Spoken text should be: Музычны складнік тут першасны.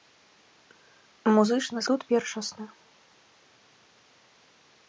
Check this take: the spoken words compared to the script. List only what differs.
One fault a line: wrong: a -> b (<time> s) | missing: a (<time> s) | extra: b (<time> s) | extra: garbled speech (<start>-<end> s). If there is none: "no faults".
missing: складнік (1.8 s)